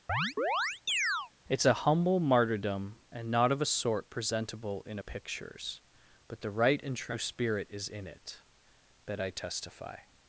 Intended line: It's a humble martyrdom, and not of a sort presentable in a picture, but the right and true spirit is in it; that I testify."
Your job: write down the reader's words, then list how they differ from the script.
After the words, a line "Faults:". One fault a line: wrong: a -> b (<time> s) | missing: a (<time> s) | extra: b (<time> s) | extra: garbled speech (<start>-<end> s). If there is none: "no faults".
It's a humble martyrdom, and not of a sort presentable in a pictures, but the right and true spirit is in it; that I testify."
Faults:
wrong: picture -> pictures (5.0 s)